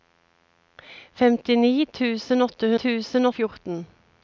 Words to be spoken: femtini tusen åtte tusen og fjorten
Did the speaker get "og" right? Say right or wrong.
right